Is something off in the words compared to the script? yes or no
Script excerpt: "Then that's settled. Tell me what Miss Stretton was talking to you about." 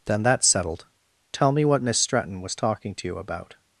no